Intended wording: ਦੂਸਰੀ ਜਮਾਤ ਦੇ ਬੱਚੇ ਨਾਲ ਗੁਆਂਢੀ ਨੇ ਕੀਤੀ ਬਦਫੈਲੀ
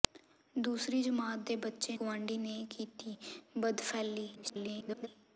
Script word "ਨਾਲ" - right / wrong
wrong